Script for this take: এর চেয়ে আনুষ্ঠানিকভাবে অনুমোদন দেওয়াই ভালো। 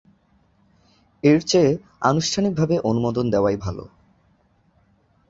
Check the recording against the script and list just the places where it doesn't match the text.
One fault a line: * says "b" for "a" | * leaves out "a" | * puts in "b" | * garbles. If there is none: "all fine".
all fine